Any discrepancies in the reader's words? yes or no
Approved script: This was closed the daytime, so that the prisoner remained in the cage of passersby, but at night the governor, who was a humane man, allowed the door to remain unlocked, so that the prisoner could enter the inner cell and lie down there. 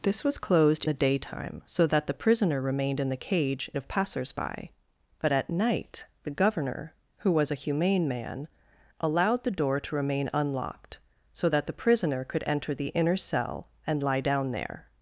no